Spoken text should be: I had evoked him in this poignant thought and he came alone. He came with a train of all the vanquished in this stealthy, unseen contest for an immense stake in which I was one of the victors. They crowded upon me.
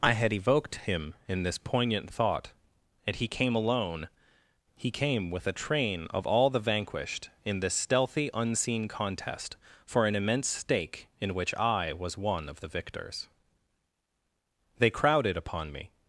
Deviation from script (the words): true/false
false